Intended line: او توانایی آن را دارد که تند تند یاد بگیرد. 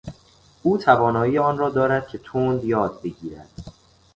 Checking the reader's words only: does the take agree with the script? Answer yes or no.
no